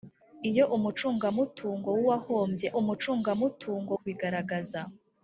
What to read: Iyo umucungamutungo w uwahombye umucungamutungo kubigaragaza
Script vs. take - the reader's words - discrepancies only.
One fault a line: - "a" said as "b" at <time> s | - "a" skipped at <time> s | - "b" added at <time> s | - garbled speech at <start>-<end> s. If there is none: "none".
none